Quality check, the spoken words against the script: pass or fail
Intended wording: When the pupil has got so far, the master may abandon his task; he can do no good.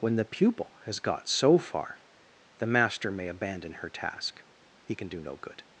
fail